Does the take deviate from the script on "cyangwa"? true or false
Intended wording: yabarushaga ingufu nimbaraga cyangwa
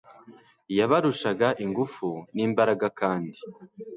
true